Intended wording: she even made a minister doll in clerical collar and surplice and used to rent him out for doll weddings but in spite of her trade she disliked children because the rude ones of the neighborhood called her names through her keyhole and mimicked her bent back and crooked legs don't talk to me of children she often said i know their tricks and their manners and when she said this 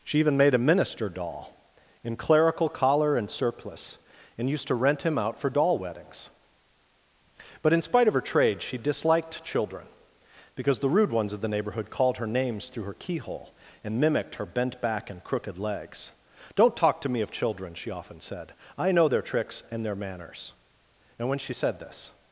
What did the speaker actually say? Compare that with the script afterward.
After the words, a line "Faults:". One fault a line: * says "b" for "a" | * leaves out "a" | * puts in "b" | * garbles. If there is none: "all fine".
she even made a minister doll in clerical collar and surplice and used to rent him out for doll weddings but in spite of her trade she disliked children because the rude ones of the neighborhood called her names through her keyhole and mimicked her bent back and crooked legs don't talk to me of children she often said i know their tricks and their manners and when she said this
Faults:
all fine